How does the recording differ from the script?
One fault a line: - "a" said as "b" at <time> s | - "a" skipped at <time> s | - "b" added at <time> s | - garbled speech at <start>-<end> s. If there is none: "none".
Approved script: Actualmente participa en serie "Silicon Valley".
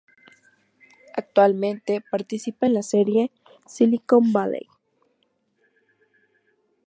- "la" added at 2.7 s